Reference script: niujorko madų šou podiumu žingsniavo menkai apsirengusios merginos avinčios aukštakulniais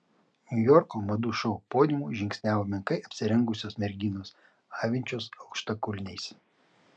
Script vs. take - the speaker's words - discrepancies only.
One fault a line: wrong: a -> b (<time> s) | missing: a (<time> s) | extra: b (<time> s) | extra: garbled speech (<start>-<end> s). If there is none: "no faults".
no faults